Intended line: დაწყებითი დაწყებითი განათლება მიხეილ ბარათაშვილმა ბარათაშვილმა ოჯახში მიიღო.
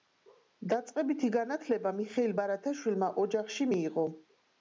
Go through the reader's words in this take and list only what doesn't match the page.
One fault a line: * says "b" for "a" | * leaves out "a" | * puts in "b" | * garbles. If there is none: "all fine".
* leaves out "დაწყებითი"
* leaves out "ბარათაშვილმა"